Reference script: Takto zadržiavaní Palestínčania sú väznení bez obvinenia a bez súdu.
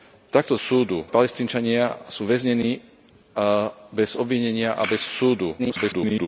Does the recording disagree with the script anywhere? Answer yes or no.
yes